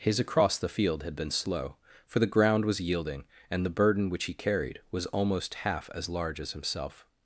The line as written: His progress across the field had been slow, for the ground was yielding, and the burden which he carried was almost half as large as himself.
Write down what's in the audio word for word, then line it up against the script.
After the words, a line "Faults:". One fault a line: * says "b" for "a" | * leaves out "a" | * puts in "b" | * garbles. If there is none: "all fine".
His across the field had been slow, for the ground was yielding, and the burden which he carried was almost half as large as himself.
Faults:
* leaves out "progress"